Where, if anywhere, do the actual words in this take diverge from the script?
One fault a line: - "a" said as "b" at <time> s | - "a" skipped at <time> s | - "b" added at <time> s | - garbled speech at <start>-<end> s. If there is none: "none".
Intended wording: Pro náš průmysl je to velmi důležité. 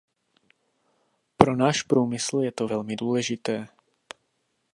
none